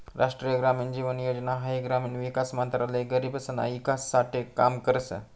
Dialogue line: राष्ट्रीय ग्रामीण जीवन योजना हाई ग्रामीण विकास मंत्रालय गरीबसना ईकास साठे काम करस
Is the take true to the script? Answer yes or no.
yes